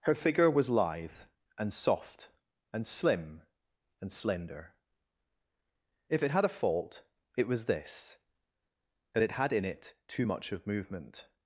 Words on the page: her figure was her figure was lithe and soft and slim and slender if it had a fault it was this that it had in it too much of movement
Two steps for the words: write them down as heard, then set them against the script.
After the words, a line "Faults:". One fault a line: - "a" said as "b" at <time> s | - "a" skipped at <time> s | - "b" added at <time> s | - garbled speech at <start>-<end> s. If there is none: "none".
her figure was lithe and soft and slim and slender if it had a fault it was this that it had in it too much of movement
Faults:
- "her figure was" skipped at 0.7 s